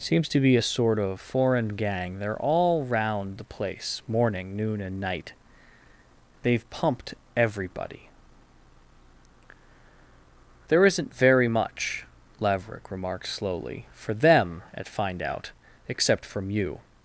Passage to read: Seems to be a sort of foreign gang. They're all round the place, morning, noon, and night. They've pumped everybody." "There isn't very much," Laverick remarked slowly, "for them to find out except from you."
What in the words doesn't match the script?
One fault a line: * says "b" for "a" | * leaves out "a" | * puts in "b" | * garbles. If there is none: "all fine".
* says "at" for "to"